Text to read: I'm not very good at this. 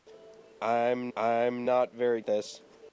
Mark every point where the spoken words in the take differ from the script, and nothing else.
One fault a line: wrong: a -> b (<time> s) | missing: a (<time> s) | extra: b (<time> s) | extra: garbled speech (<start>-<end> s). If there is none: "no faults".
extra: I'm (1.2 s)
missing: good at (2.2 s)